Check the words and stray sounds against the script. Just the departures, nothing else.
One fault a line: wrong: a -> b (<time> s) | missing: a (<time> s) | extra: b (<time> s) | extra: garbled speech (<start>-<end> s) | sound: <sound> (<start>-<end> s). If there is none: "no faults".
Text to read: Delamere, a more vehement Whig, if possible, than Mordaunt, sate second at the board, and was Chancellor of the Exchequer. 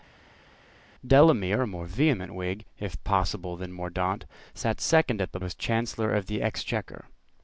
missing: board and (5.4 s)